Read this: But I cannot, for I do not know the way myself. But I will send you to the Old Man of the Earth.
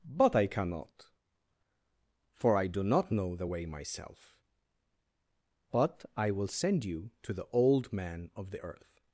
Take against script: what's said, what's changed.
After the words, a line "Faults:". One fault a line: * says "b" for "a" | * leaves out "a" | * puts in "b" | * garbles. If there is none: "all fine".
But I cannot, for I do not know the way myself. But I will send you to the Old Man of the Earth.
Faults:
all fine